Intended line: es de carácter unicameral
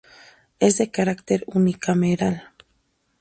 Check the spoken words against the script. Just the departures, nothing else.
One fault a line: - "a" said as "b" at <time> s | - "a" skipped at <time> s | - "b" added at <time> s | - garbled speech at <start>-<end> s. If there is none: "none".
none